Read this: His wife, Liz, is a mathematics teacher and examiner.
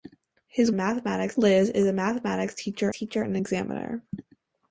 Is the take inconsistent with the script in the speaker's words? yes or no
yes